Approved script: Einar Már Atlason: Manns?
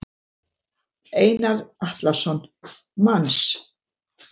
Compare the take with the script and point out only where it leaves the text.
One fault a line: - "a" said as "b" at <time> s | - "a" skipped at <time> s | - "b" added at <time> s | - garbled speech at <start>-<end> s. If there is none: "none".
- "Már" skipped at 1.7 s